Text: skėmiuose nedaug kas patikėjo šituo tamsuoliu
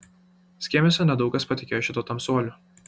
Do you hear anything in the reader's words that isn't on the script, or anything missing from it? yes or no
no